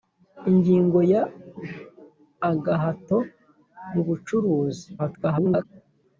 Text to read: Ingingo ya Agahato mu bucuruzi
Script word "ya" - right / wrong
right